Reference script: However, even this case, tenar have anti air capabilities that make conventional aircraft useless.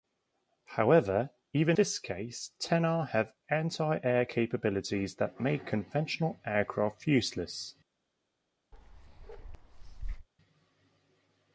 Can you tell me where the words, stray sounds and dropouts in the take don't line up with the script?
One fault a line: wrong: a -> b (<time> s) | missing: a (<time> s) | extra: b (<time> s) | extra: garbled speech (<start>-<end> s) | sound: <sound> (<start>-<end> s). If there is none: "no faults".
sound: bark (8.7-10.3 s)